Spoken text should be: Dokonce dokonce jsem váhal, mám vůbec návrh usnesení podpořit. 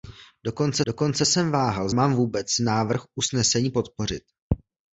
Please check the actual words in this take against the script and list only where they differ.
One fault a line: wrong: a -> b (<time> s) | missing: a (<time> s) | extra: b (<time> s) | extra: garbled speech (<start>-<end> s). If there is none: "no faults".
no faults